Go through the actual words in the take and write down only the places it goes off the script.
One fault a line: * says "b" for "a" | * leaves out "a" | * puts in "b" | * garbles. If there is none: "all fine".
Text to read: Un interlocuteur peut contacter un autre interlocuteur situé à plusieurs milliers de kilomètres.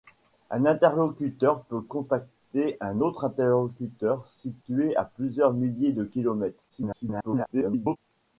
* garbles